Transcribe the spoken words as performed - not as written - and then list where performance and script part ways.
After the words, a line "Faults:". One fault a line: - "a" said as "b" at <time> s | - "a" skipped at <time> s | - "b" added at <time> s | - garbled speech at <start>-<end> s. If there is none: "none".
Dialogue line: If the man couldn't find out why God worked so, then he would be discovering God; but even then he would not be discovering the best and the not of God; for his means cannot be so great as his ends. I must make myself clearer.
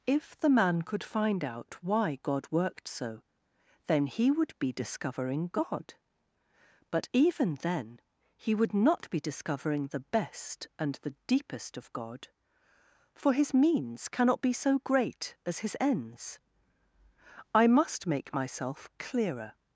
If the man could find out why God worked so, then he would be discovering God; but even then he would not be discovering the best and the deepest of God; for his means cannot be so great as his ends. I must make myself clearer.
Faults:
- "couldn't" said as "could" at 0.8 s
- "not" said as "deepest" at 11.3 s